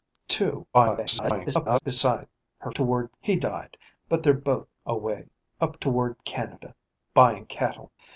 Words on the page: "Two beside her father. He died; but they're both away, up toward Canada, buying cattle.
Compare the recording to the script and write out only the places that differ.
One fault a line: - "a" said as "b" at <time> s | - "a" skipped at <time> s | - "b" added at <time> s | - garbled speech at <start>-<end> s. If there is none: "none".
- garbled speech at 0.7-1.8 s
- "father" said as "toward" at 2.7 s